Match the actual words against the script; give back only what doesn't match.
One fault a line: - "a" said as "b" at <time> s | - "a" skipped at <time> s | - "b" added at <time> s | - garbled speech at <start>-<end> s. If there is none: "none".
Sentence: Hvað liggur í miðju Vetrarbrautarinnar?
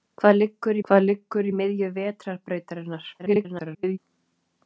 - "hvað liggur" added at 0.9 s
- garbled speech at 3.2-4.0 s